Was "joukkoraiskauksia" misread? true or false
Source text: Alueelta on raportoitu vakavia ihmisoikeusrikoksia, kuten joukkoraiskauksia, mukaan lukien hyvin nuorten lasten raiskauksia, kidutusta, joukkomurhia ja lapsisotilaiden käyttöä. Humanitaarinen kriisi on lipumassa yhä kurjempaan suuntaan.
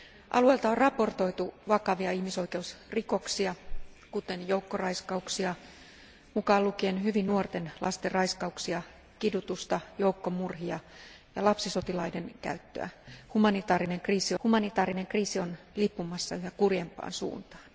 false